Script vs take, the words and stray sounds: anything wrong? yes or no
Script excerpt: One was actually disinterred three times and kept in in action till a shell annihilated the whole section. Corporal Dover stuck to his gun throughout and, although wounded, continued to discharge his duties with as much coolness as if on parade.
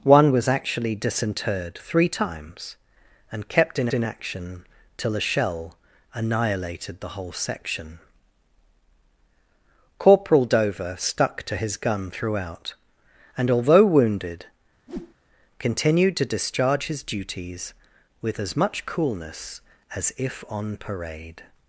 yes